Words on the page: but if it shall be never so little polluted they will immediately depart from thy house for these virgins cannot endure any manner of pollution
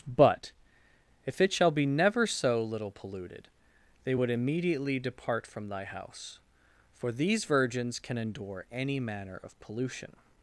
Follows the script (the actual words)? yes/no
no